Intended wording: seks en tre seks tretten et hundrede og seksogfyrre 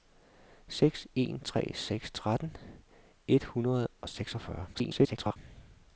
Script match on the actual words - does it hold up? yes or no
no